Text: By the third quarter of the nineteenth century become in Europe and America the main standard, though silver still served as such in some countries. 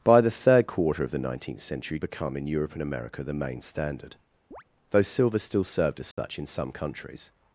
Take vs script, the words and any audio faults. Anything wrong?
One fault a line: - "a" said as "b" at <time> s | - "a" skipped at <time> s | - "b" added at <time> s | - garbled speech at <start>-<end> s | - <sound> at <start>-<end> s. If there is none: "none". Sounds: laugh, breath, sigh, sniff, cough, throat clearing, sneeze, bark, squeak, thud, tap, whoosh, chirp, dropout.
- chirp at 4.5-4.6 s
- dropout at 6.1-6.2 s